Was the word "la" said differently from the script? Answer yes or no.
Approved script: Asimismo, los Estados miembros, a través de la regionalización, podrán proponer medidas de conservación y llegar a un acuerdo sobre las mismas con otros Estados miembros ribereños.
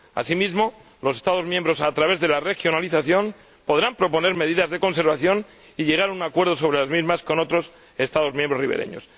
no